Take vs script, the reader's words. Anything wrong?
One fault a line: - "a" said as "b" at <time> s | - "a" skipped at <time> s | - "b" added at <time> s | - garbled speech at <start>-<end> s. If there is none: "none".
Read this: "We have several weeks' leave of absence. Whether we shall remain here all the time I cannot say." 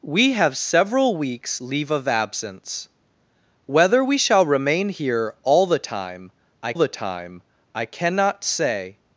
- "the time I" added at 6.8 s